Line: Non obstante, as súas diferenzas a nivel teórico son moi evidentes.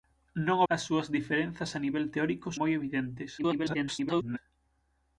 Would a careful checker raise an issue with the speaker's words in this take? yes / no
yes